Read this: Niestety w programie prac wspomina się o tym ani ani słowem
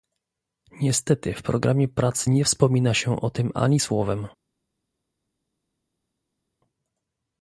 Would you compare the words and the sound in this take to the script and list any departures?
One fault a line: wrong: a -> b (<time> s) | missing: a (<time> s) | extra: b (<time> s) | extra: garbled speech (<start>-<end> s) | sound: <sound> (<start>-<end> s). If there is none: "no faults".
extra: nie (2.3 s)
missing: ani (3.8 s)